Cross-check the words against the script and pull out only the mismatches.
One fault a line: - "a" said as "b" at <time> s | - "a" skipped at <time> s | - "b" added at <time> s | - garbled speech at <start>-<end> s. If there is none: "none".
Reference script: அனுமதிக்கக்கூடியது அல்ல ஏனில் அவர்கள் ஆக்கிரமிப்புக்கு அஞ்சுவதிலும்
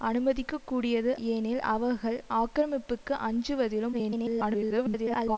- "அல்ல" skipped at 1.1 s
- garbled speech at 3.9-5.4 s